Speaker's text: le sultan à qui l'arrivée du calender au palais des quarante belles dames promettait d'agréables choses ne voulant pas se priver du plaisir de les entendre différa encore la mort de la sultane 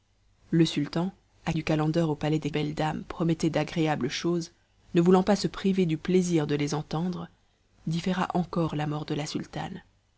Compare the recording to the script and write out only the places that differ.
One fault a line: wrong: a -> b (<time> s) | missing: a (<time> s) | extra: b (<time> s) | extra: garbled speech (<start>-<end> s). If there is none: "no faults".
missing: qui l'arrivée (1.5 s)
missing: quarante (2.5 s)